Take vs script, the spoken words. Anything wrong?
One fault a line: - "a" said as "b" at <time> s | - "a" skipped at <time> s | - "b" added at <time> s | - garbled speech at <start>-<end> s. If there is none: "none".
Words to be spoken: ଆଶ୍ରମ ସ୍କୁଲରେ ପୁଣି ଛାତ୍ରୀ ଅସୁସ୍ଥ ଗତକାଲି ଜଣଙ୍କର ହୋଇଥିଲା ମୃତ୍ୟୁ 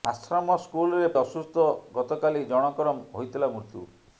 - "ପୁଣି ଛାତ୍ରୀ" skipped at 1.1 s